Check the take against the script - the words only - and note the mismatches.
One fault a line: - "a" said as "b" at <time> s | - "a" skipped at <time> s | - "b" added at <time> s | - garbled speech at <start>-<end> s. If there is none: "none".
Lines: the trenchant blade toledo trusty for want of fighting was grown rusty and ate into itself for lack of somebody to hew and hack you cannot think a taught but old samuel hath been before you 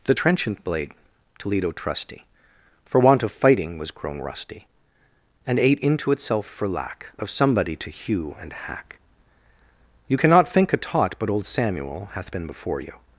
none